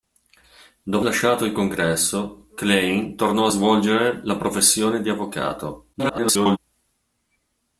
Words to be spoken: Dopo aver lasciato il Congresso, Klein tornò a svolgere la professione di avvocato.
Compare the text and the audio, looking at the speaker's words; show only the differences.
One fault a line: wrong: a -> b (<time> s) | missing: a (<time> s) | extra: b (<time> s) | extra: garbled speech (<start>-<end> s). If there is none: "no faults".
missing: aver (1.1 s)
extra: garbled speech (5.9-6.6 s)